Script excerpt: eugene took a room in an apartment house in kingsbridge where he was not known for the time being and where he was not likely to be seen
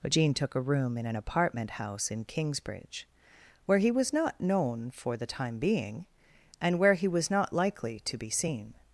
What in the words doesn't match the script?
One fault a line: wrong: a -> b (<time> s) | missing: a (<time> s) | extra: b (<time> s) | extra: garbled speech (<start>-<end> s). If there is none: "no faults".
no faults